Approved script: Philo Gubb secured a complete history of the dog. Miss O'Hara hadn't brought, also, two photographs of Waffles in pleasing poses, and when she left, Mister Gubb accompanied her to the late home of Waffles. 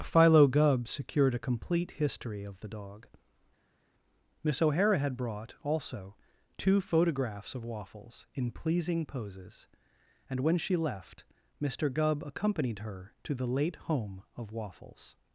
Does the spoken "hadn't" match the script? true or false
false